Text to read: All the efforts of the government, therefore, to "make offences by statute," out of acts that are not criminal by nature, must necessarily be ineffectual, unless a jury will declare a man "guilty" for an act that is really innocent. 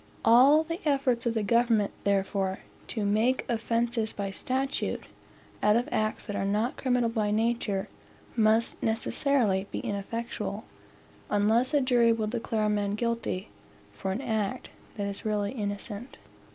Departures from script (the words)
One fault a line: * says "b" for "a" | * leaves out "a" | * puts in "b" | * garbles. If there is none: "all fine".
all fine